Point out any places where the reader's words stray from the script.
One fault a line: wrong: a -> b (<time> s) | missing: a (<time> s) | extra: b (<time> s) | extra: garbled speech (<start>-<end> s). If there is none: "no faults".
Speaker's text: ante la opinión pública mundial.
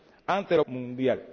missing: opinión pública (0.6 s)